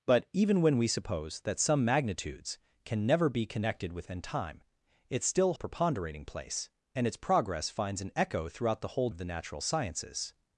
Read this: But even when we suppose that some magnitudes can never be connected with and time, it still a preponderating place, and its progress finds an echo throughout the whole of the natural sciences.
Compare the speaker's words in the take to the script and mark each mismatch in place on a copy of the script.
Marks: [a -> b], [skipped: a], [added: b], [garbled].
But even when we suppose that some magnitudes can never be connected with and time, it still a preponderating place, and its progress finds an echo throughout the whole of the natural sciences.